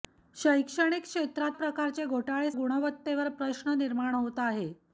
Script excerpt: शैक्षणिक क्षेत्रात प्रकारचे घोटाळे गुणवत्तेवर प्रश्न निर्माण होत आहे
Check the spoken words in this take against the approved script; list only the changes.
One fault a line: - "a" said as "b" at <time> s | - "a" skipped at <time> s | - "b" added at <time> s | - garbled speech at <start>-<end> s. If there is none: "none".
none